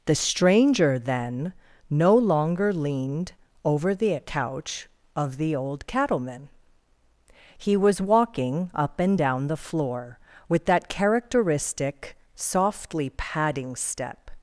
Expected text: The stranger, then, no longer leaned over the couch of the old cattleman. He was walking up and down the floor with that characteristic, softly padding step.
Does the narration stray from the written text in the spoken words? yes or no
no